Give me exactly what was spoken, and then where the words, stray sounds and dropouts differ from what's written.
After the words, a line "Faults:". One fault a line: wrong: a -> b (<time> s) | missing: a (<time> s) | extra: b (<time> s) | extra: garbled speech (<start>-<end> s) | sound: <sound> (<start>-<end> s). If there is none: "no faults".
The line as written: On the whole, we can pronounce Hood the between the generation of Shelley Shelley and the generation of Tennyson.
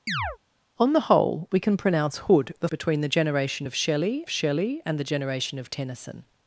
On the whole, we can pronounce Hood the between the generation of Shelley Shelley and the generation of Tennyson.
Faults:
sound: chirp (0.1-0.4 s)